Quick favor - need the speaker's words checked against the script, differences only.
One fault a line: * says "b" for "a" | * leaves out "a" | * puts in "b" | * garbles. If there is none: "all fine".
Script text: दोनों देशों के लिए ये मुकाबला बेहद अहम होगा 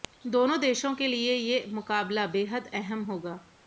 all fine